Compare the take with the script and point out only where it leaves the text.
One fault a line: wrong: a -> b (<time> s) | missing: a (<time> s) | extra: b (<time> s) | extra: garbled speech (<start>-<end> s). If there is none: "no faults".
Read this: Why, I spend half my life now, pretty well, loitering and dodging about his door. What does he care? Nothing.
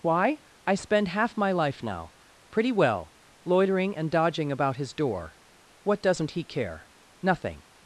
wrong: does -> doesn't (6.0 s)